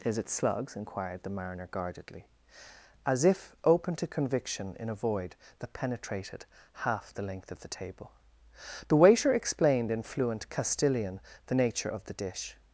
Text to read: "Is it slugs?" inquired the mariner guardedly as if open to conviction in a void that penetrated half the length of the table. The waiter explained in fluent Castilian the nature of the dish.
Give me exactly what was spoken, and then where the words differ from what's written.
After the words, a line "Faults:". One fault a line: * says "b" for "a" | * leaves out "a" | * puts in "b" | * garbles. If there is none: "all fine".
"Is it slugs?" inquired the mariner guardedly as if open to conviction in a void that penetrated half the length of the table. The waiter explained in fluent Castilian the nature of the dish.
Faults:
all fine